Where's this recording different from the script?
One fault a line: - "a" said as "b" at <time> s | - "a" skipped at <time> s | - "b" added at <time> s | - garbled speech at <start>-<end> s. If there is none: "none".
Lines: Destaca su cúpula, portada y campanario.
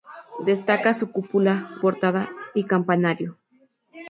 none